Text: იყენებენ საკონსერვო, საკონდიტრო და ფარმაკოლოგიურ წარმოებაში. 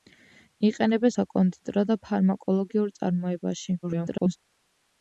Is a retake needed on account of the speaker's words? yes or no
yes